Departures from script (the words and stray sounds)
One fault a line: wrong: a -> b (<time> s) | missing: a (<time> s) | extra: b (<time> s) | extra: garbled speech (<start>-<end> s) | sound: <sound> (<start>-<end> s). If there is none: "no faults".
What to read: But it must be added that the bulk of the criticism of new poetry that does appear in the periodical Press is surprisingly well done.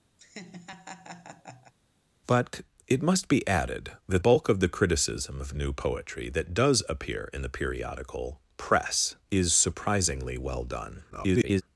sound: laugh (0.2-1.7 s)
missing: the (4.2 s)
extra: garbled speech (11.1-11.6 s)